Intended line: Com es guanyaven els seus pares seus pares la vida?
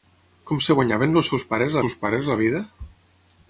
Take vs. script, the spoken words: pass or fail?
pass